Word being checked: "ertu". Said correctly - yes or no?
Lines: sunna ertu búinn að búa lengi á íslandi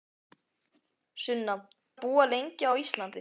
no